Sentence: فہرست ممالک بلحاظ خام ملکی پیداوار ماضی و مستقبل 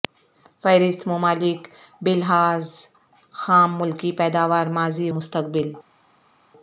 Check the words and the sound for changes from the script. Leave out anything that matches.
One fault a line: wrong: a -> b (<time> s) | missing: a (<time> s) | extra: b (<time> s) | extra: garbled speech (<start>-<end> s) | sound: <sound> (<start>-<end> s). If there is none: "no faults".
missing: و (5.1 s)